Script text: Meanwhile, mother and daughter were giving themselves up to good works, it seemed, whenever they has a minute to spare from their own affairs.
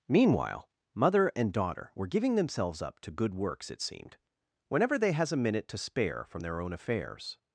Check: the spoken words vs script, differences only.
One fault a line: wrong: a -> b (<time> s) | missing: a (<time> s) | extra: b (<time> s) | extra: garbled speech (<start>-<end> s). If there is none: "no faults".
no faults